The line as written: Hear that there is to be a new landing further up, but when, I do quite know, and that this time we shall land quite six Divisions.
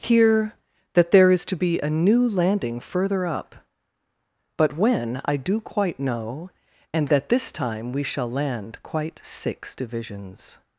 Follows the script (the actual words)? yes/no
yes